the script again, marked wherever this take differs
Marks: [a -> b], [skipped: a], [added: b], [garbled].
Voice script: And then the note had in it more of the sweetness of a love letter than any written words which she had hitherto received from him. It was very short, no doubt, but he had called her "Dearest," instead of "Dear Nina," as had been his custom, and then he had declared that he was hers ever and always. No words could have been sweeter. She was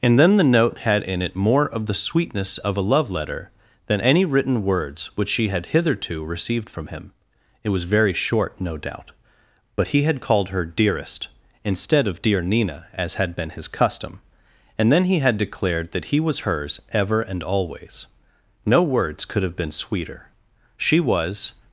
And then the note had in it more of the sweetness of a love letter than any written words which she had hitherto received from him. It was very short, no doubt, but he had called her "Dearest," instead of "Dear Nina," as had been his custom, and then he had declared that he was hers ever and always. No words could have been sweeter. She was